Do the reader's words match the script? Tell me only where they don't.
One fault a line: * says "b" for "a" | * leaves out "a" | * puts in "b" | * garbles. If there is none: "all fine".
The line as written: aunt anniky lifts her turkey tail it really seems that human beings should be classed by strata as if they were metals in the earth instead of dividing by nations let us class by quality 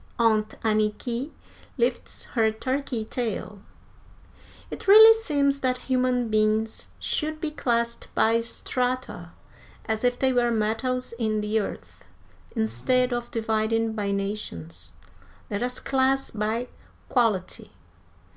all fine